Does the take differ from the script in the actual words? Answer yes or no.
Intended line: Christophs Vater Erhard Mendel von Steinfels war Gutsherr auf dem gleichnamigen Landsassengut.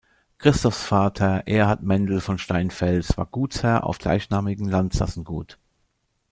yes